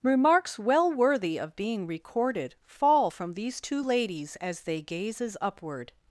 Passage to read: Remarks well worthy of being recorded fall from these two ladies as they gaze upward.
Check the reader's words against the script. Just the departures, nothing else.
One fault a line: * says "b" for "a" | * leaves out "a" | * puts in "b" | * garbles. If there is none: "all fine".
* says "gazes" for "gaze"